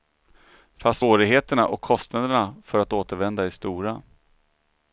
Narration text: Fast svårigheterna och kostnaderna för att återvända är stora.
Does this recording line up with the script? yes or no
yes